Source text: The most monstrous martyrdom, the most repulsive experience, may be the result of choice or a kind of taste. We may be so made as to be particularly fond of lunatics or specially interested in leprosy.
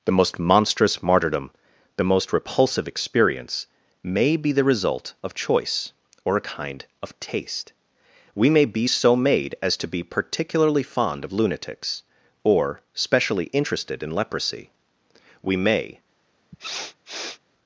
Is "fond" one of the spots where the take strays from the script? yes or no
no